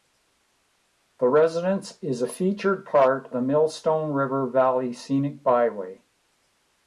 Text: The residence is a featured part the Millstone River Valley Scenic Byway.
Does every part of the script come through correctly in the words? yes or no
yes